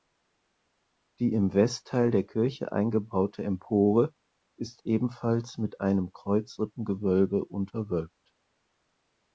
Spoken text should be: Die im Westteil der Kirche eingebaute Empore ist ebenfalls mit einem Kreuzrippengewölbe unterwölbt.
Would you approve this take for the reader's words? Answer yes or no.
yes